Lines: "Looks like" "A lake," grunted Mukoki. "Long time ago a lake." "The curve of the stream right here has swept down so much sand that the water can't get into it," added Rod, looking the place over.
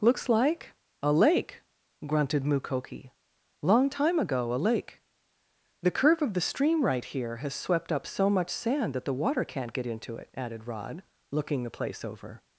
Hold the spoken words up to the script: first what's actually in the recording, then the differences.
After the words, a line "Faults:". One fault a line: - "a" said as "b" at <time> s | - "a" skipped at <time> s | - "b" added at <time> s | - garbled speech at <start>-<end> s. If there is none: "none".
"Looks like" "A lake," grunted Mukoki. "Long time ago a lake." "The curve of the stream right here has swept up so much sand that the water can't get into it," added Rod, looking the place over.
Faults:
- "down" said as "up" at 7.9 s